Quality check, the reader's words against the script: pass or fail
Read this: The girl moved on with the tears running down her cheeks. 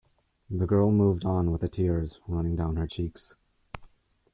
pass